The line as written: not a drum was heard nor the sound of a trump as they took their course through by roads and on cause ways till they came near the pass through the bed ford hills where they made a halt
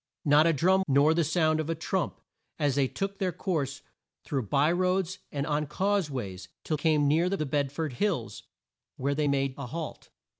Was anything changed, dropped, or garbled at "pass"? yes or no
yes